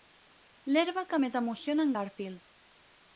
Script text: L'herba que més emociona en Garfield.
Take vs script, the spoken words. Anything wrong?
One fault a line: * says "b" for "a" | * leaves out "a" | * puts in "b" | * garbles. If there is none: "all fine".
all fine